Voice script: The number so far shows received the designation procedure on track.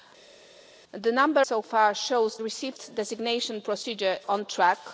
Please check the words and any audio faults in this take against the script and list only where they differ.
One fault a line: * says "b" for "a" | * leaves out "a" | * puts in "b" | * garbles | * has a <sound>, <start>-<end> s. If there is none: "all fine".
all fine